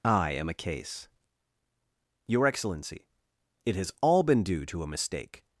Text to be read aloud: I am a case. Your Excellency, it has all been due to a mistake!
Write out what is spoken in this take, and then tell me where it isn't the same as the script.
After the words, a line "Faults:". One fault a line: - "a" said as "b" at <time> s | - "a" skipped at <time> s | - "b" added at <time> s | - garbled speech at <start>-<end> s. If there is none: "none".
I am a case. Your Excellency, it has all been due to a mistake!
Faults:
none